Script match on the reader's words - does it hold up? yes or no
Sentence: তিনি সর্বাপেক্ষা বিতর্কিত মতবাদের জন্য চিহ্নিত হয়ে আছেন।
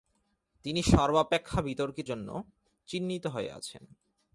no